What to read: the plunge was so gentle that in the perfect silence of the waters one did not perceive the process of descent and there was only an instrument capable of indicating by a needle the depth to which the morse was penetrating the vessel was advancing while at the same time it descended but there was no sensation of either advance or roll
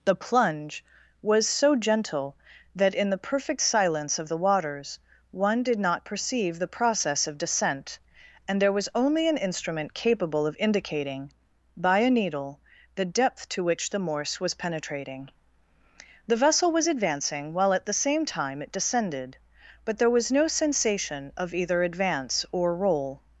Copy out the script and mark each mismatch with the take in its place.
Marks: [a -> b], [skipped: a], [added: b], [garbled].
the plunge was so gentle that in the perfect silence of the waters one did not perceive the process of descent and there was only an instrument capable of indicating by a needle the depth to which the morse was penetrating the vessel was advancing while at the same time it descended but there was no sensation of either advance or roll